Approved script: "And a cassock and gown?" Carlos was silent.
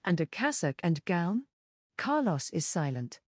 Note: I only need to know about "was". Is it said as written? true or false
false